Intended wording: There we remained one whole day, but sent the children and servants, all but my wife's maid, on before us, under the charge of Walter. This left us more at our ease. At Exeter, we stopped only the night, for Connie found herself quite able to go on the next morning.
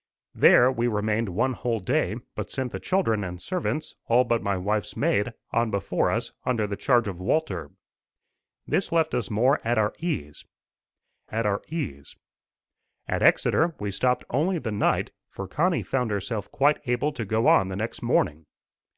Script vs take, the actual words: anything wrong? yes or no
yes